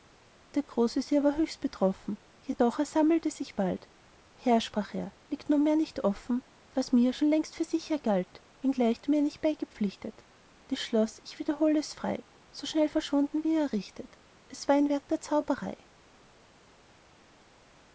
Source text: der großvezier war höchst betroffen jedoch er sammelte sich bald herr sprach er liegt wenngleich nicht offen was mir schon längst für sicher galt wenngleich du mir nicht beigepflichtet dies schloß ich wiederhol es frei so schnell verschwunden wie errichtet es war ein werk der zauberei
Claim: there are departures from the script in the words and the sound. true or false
true